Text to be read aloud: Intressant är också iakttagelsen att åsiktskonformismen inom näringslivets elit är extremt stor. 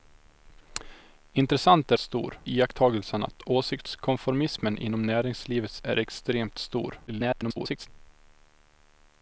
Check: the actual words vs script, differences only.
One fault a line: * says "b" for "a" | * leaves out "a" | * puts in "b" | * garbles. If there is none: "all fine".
* says "stor" for "också"
* leaves out "elit"
* garbles